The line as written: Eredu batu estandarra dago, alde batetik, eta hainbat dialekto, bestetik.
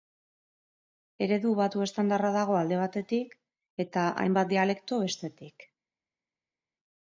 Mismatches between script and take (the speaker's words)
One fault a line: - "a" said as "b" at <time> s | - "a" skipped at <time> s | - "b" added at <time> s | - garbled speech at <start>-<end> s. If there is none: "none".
none